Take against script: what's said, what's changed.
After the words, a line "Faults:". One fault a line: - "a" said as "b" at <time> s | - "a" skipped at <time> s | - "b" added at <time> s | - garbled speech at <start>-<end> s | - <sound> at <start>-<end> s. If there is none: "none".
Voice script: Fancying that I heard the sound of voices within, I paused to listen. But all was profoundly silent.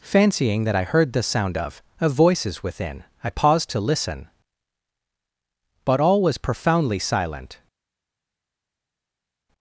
Fancying that I heard the sound of of voices within, I paused to listen. But all was profoundly silent.
Faults:
- "of" added at 2.0 s